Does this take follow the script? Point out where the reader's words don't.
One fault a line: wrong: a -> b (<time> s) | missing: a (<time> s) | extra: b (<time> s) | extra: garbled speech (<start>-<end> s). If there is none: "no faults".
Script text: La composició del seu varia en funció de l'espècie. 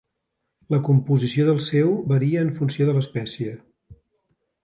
no faults